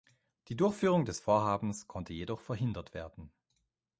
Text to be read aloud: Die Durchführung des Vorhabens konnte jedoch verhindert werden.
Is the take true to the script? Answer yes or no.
yes